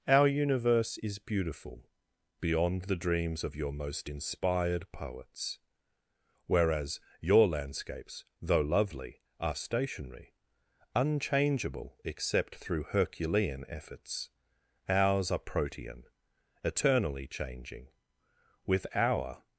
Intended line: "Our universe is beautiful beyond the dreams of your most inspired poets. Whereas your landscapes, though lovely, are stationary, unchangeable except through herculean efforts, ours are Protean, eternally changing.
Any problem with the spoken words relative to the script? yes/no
yes